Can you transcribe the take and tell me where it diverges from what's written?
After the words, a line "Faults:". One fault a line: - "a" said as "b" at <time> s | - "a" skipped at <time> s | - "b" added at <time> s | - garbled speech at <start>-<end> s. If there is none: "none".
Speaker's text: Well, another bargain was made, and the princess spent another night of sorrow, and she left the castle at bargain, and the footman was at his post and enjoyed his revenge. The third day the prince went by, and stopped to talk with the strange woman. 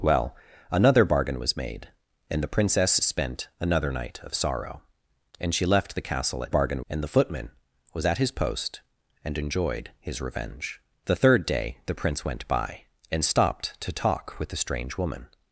Well, another bargain was made, and the princess spent another night of sorrow, and she left the castle at bargain, and the footman was at his post and enjoyed his revenge. The third day the prince went by, and stopped to talk with the strange woman.
Faults:
none